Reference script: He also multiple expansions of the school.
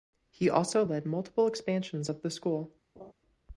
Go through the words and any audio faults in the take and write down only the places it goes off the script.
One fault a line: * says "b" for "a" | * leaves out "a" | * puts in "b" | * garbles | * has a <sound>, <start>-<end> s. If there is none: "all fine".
* puts in "led"
* has a laugh, 3.0-3.1 s